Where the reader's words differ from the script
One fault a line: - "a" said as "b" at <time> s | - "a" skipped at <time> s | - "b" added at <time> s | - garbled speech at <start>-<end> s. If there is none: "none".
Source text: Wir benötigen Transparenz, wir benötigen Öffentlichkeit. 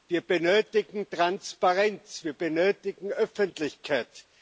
none